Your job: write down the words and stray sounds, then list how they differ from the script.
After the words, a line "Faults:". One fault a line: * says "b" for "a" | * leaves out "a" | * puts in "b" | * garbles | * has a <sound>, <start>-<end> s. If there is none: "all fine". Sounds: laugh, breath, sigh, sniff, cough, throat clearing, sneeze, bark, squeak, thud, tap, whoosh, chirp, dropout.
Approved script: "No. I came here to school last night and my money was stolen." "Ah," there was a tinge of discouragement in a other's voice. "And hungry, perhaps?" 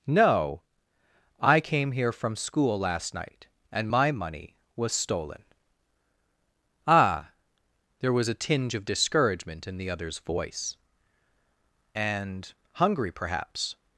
"No. I came here from school last night and my money was stolen." "Ah," there was a tinge of discouragement in the other's voice. "And hungry, perhaps?"
Faults:
* says "from" for "to"
* says "the" for "a"